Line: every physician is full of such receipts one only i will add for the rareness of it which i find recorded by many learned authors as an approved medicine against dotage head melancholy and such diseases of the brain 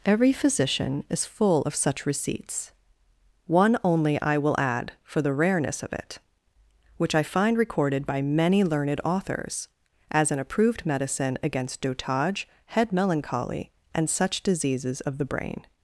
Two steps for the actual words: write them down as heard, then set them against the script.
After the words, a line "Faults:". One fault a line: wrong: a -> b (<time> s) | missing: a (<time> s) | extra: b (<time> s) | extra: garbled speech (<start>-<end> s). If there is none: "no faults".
every physician is full of such receipts one only i will add for the rareness of it which i find recorded by many learned authors as an approved medicine against dotage head melancholy and such diseases of the brain
Faults:
no faults